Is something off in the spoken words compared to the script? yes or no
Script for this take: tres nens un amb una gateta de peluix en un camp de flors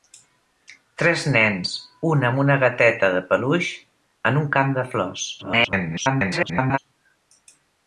yes